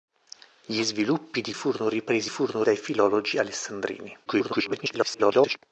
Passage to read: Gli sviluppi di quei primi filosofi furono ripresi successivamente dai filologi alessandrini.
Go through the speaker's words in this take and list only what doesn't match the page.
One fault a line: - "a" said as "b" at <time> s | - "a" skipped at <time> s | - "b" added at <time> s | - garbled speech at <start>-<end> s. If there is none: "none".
- "quei primi filosofi" skipped at 1.5 s
- "successivamente" said as "furono" at 2.3 s
- garbled speech at 4.3-5.6 s